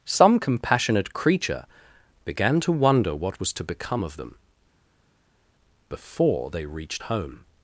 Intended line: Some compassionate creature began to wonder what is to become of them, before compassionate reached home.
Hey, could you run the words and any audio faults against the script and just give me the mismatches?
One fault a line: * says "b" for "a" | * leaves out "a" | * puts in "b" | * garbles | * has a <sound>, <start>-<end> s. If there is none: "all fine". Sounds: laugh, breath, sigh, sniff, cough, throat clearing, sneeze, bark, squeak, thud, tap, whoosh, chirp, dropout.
* says "was" for "is"
* says "they" for "compassionate"